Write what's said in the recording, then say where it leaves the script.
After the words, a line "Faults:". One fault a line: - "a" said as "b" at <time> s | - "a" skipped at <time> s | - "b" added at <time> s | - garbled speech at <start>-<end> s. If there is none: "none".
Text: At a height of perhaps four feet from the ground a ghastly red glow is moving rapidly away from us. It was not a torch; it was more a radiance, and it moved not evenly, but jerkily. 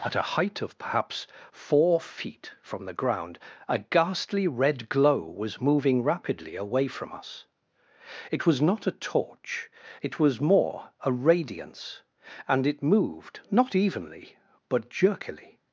At a height of perhaps four feet from the ground a ghastly red glow was moving rapidly away from us. It was not a torch; it was more a radiance, and it moved not evenly, but jerkily.
Faults:
- "is" said as "was" at 5.2 s